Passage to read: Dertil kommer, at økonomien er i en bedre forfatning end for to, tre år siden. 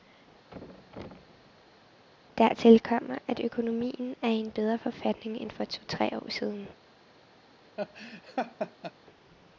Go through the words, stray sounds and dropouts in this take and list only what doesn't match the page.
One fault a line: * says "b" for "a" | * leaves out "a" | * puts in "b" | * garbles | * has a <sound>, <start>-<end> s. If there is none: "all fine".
* has a thud, 0.5-2.1 s
* has a laugh, 7.8-8.9 s